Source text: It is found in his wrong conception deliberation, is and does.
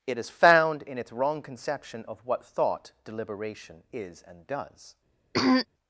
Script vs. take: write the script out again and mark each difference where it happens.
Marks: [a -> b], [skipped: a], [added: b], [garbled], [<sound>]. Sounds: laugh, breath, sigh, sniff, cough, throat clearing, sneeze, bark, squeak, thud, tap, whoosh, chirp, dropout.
It is found in [his -> its] wrong conception [added: of what thought] deliberation, is and does. [throat clearing]